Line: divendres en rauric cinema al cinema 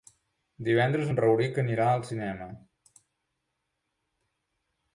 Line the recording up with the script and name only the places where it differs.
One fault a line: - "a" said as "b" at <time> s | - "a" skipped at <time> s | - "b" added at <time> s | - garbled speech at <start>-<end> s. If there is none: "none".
- "cinema" said as "anirà" at 1.6 s